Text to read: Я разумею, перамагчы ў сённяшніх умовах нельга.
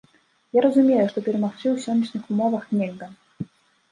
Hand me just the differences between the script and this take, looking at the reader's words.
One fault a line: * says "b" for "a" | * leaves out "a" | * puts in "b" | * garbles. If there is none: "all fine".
* puts in "што"